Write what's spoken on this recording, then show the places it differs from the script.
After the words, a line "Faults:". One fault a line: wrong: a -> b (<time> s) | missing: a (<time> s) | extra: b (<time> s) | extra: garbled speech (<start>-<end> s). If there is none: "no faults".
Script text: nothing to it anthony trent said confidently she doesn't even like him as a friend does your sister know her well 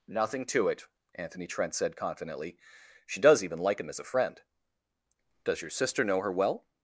nothing to it anthony trent said confidently she does even like him as a friend does your sister know her well
Faults:
wrong: doesn't -> does (3.2 s)